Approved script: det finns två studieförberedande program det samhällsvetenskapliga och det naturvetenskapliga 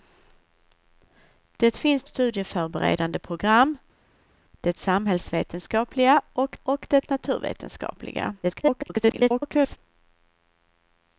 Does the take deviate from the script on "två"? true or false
true